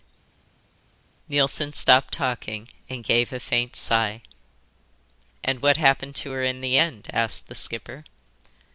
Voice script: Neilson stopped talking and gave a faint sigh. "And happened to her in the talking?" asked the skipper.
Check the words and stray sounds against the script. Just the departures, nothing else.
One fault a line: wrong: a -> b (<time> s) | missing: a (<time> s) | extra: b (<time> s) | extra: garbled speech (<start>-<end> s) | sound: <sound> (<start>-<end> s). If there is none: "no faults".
extra: what (5.6 s)
wrong: talking -> end (6.8 s)